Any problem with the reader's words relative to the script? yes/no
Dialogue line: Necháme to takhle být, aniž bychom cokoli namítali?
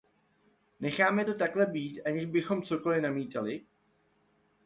no